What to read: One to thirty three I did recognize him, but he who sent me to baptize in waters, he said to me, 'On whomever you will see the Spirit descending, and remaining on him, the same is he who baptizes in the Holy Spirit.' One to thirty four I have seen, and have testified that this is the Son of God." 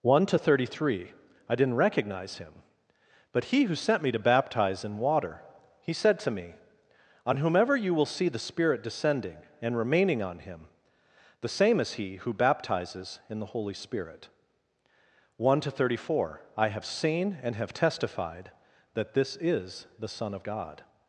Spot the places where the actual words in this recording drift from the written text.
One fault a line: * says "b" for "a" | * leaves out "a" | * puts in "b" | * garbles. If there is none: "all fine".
* says "didn't" for "did"
* says "water" for "waters"